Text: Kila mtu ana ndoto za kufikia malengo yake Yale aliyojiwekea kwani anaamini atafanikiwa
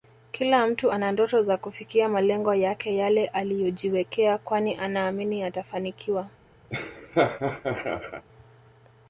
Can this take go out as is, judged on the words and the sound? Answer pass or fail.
fail